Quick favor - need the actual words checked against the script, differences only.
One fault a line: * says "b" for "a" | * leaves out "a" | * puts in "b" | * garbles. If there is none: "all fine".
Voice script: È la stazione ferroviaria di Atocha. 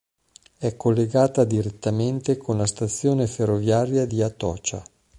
* puts in "collegata direttamente con"